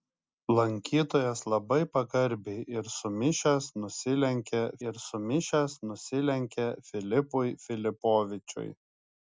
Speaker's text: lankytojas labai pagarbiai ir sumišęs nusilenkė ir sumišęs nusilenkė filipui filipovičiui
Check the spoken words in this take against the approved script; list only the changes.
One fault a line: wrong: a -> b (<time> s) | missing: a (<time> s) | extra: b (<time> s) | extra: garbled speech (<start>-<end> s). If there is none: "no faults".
no faults